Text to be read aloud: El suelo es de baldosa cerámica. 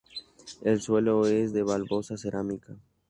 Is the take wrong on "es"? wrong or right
right